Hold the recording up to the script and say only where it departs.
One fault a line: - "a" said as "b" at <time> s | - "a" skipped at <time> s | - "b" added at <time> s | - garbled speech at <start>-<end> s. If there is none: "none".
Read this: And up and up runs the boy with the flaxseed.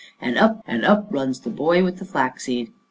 none